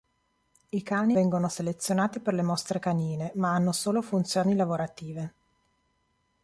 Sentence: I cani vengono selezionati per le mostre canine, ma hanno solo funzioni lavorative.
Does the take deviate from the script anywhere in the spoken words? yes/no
no